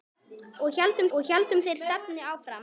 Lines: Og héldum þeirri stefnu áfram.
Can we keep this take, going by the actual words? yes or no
no